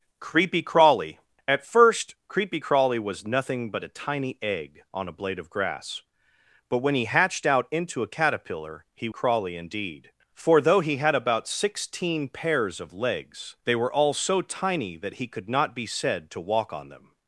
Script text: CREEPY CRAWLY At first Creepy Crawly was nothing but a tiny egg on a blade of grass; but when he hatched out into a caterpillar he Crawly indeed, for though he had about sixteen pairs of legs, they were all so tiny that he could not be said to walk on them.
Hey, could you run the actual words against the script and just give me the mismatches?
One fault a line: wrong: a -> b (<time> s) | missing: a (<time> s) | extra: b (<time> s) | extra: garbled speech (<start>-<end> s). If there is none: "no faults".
no faults